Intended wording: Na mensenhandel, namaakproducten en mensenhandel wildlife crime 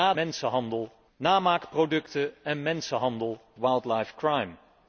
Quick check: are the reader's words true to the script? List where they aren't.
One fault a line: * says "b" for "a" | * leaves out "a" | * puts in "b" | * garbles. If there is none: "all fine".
all fine